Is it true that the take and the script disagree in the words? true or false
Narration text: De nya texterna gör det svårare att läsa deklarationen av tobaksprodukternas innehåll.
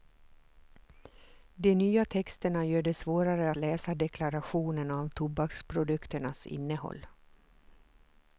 true